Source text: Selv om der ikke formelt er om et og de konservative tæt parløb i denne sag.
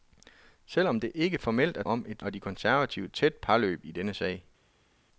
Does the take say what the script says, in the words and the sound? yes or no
yes